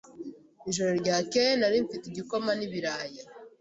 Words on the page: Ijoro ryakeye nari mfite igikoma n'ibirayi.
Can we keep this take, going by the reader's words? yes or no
yes